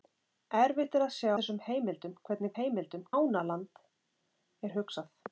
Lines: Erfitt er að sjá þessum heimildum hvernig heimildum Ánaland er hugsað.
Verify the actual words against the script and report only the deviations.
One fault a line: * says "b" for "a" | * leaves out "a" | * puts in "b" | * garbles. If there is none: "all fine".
all fine